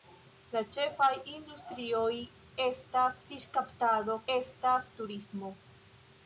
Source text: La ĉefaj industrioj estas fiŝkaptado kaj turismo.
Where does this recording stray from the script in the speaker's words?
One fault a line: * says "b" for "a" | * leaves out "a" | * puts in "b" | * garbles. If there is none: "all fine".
* says "estas" for "kaj"